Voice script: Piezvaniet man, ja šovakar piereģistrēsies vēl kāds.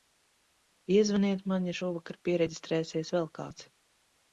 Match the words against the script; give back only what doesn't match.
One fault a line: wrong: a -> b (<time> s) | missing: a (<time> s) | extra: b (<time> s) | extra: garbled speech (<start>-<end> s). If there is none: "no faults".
no faults